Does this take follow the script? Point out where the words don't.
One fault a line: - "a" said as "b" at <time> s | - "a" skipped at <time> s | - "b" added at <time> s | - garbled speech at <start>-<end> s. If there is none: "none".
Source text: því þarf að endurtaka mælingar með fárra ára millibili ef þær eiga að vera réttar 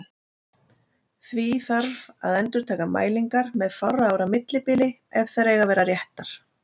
none